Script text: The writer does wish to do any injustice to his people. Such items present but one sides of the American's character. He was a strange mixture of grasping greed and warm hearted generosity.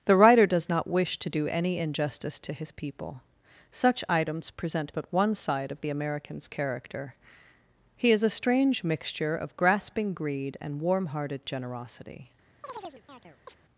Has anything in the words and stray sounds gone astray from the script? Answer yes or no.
yes